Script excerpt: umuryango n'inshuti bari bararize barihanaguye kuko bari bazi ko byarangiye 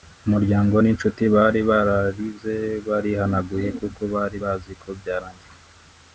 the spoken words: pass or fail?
pass